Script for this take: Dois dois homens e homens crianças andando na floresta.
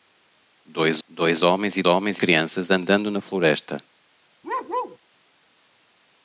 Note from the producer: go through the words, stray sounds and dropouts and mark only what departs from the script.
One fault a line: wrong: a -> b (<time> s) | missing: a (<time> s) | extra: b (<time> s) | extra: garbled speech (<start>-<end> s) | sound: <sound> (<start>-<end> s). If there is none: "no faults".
sound: bark (4.4-5.0 s)